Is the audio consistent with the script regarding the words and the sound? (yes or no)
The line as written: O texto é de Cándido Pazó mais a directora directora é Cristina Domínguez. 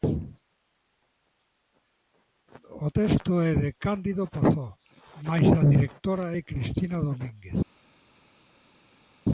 no